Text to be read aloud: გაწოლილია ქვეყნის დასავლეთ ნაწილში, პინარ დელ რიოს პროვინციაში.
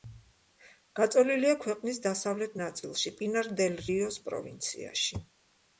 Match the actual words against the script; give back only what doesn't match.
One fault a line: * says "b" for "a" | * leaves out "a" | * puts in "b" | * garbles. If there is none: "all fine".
all fine